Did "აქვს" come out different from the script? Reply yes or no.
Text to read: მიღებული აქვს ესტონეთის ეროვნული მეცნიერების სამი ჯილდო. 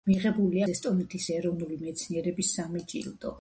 yes